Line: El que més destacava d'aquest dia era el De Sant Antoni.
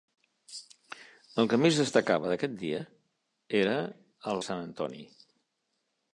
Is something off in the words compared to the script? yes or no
no